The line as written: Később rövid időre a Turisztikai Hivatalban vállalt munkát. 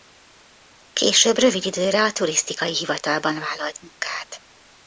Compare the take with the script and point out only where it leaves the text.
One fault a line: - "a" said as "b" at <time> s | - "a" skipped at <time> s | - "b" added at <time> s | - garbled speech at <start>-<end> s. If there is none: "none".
none